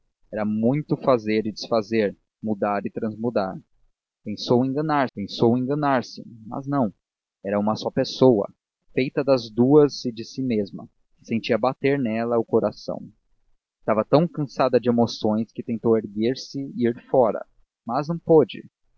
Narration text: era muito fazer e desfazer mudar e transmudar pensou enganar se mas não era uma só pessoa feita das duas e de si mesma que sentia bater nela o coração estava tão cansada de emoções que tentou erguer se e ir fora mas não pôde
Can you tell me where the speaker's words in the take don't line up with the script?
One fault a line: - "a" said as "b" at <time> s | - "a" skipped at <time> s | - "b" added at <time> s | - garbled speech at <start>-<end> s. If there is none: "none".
- "pensou enganar" added at 5.1 s